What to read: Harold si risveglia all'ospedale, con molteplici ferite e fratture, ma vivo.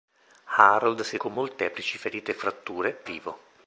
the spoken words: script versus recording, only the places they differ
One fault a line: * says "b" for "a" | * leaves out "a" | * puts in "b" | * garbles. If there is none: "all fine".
* leaves out "risveglia all'ospedale"
* leaves out "ma"